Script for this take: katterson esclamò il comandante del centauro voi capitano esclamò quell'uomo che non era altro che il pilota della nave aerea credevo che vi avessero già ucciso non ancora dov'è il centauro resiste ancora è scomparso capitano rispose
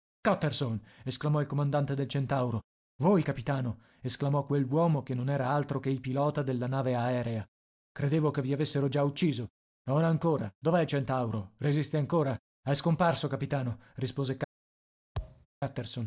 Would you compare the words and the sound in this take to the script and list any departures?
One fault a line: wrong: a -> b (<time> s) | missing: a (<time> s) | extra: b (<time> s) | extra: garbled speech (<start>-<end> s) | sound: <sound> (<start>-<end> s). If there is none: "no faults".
sound: thud (15.2-15.5 s)